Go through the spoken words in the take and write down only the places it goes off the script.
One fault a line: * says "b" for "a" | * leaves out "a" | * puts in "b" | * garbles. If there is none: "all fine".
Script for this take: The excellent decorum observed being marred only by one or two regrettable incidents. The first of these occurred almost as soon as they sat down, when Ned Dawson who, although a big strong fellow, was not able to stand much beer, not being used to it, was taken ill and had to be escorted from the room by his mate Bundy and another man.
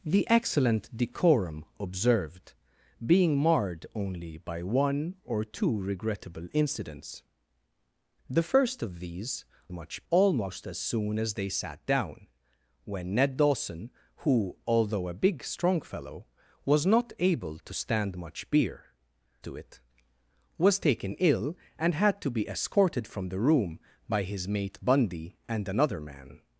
* says "much" for "occurred"
* leaves out "not being used"